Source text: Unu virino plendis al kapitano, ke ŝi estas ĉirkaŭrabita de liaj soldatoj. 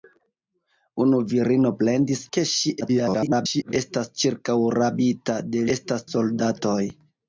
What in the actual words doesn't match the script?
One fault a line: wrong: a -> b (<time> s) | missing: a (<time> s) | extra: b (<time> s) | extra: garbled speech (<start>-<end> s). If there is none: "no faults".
missing: al kapitano (2.2 s)
extra: garbled speech (2.8-3.7 s)
wrong: liaj -> estas (5.7 s)